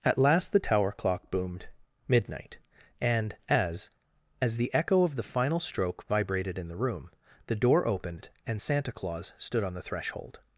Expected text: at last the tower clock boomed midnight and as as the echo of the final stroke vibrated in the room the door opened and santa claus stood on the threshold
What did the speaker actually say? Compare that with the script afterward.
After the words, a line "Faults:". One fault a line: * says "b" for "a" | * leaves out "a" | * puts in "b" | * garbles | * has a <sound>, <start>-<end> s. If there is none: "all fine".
at last the tower clock boomed midnight and as as the echo of the final stroke vibrated in the room the door opened and santa claus stood on the threshold
Faults:
all fine